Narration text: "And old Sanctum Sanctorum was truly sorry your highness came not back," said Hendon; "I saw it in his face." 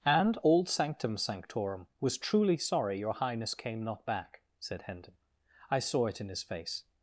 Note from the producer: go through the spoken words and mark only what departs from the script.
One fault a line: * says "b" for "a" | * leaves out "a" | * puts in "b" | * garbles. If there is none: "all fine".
all fine